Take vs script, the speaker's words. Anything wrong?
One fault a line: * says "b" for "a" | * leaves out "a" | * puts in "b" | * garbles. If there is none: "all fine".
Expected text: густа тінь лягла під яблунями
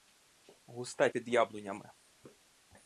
* leaves out "тінь лягла"